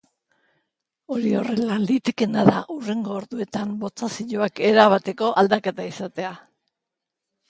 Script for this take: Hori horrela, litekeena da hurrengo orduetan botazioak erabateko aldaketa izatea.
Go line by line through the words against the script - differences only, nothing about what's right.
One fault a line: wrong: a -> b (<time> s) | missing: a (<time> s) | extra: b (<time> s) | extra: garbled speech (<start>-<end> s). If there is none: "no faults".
no faults